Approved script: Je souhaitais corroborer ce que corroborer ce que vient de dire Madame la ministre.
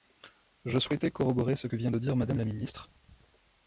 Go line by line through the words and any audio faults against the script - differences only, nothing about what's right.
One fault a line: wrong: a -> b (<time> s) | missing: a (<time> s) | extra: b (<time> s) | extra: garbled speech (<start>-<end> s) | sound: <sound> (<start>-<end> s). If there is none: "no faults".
missing: corroborer ce que (1.7 s)